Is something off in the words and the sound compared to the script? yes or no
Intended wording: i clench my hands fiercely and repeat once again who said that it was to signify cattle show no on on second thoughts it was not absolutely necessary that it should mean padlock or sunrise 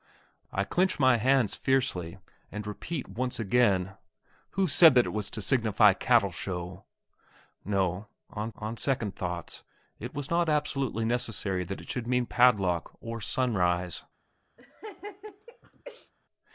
yes